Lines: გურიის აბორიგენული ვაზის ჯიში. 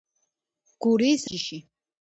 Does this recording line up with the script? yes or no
no